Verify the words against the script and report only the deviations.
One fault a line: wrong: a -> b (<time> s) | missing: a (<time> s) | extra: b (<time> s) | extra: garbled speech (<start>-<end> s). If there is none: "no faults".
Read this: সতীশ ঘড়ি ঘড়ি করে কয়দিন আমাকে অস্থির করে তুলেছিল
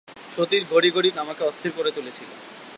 missing: করে কয়দিন (1.1 s)